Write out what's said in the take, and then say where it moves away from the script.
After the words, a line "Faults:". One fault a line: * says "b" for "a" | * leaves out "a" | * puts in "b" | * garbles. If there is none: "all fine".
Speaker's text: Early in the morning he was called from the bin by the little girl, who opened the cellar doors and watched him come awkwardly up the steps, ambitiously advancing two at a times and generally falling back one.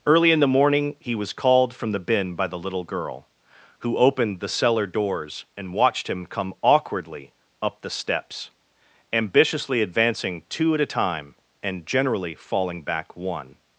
Early in the morning he was called from the bin by the little girl, who opened the cellar doors and watched him come awkwardly up the steps, ambitiously advancing two at a time and generally falling back one.
Faults:
* says "time" for "times"